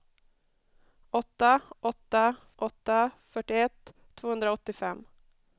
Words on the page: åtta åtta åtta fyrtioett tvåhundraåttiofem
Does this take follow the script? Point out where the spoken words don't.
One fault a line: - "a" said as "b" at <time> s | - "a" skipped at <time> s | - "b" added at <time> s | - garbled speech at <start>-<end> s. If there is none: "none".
none